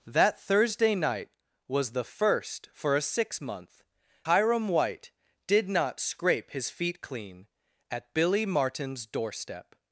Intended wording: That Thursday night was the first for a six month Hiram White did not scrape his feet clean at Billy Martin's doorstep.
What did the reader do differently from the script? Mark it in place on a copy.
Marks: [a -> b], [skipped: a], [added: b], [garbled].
That Thursday night was the first for a six month Hiram White did not scrape his feet clean at Billy Martin's doorstep.